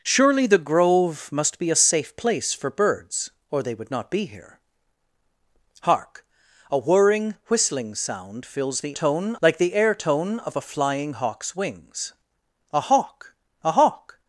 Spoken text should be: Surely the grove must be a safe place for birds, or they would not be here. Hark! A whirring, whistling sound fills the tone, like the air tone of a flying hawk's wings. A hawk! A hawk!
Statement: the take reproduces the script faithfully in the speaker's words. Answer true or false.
true